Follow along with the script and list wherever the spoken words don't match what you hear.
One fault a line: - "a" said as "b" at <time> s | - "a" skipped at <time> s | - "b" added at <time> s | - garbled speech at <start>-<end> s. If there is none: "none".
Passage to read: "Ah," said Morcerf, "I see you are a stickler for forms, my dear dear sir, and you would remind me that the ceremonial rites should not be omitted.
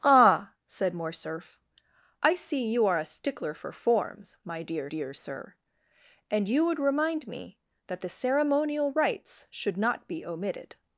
none